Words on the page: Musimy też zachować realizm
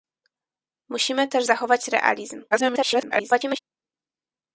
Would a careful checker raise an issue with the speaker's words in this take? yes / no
yes